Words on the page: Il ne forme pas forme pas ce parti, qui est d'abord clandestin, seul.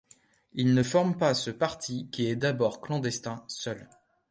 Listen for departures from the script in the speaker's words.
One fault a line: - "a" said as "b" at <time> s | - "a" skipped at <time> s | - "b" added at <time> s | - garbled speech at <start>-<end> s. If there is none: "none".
- "forme pas" skipped at 1.3 s